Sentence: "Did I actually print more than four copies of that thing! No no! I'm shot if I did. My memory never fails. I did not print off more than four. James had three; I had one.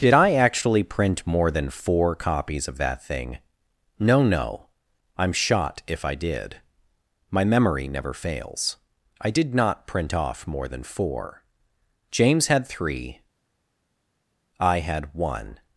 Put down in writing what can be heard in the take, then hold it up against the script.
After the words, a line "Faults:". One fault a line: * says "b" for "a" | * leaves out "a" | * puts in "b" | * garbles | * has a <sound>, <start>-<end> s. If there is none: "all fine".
"Did I actually print more than four copies of that thing! No no! I'm shot if I did. My memory never fails. I did not print off more than four. James had three; I had one.
Faults:
all fine